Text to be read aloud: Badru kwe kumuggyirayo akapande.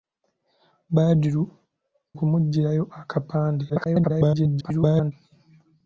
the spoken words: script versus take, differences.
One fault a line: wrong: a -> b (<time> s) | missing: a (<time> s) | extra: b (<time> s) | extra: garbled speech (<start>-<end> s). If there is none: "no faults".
missing: kwe (1.4 s)
extra: garbled speech (3.7-5.1 s)